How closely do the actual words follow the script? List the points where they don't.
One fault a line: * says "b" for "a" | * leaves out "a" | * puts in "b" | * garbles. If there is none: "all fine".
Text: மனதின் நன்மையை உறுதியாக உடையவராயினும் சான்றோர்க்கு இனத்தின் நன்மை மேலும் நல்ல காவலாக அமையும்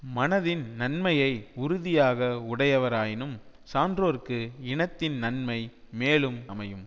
* leaves out "நல்ல காவலாக"